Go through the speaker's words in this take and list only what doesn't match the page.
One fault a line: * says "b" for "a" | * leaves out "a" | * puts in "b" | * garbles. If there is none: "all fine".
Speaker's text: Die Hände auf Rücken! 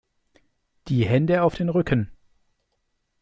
* puts in "den"